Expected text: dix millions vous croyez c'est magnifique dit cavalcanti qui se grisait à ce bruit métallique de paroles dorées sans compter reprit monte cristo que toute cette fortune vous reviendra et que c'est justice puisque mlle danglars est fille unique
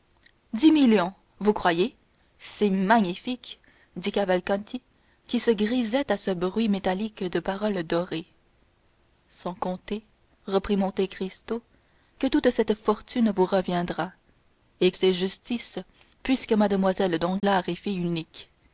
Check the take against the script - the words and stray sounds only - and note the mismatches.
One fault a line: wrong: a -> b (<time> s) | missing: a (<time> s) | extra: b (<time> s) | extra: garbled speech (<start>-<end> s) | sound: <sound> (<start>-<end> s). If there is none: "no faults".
missing: que (14.9 s)
sound: dropout (17.4-17.4 s)